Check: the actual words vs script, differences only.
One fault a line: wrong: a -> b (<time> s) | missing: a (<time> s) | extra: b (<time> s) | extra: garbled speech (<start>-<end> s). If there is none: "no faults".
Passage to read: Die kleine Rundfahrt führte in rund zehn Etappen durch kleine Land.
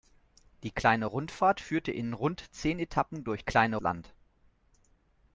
no faults